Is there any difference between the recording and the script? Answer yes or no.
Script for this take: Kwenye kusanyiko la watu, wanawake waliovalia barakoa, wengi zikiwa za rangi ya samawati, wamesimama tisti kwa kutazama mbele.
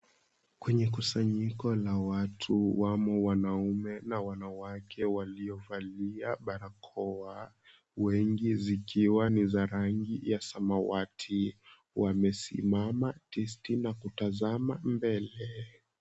yes